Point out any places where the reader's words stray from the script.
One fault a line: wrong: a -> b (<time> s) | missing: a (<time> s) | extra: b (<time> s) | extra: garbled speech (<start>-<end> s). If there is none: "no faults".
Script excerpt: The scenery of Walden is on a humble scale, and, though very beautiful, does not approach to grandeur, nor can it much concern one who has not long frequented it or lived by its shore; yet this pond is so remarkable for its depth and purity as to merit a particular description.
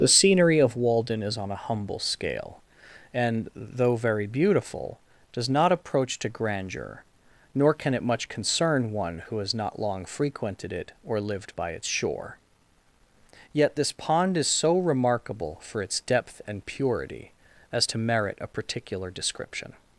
no faults